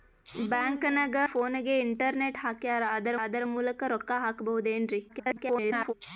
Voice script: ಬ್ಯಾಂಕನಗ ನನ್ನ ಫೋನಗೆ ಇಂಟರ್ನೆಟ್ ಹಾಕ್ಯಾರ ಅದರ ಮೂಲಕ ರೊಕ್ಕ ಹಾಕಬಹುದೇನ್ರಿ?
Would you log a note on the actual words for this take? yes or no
yes